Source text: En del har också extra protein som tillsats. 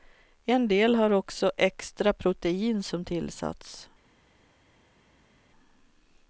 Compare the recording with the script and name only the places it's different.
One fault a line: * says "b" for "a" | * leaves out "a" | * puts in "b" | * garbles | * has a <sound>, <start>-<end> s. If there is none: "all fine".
all fine